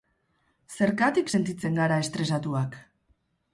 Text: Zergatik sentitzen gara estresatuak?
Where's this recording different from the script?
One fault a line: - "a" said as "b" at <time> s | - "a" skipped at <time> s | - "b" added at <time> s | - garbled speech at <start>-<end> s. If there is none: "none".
none